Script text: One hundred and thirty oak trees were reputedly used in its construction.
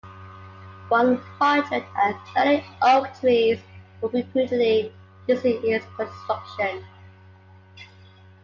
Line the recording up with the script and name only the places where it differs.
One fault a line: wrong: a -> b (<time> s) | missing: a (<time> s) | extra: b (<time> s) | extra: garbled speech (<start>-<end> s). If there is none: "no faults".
no faults